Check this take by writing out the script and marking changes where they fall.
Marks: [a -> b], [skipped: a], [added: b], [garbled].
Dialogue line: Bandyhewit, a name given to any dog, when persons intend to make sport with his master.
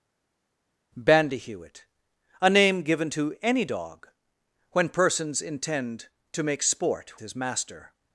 Bandyhewit, a name given to any dog, when persons intend to make sport [skipped: with] his master.